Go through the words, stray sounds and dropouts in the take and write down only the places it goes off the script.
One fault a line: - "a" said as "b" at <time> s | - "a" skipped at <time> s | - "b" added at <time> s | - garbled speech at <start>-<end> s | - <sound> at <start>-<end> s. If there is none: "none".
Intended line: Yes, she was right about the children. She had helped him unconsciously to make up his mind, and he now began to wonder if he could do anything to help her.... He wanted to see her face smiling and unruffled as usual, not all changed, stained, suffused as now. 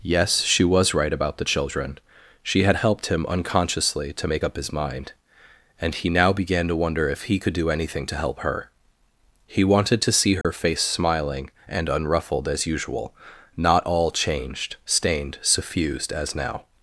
- dropout at 10.4-10.4 s